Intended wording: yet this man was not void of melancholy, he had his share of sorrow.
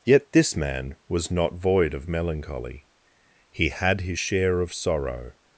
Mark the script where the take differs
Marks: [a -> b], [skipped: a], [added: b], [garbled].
yet this man was not void of melancholy, he had his share of sorrow.